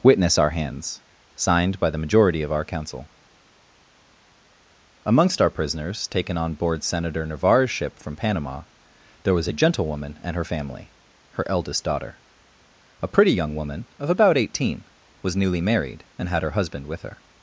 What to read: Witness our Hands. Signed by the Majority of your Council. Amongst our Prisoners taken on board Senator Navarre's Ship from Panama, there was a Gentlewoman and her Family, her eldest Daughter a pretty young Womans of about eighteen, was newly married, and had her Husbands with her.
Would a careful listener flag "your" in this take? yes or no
yes